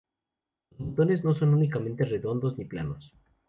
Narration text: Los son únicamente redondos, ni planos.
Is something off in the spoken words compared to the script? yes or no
yes